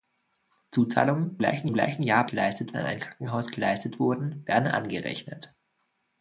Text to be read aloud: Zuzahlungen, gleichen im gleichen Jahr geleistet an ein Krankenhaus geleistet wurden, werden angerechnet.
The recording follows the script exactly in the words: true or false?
true